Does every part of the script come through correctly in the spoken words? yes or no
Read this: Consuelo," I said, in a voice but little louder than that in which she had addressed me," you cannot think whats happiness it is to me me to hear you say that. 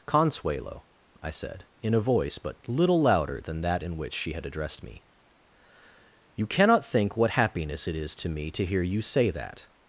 no